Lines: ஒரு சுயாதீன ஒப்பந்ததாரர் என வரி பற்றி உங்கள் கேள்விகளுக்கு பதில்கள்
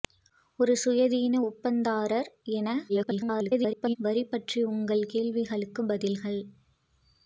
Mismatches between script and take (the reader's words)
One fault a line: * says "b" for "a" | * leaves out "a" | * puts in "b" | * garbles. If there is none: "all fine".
* garbles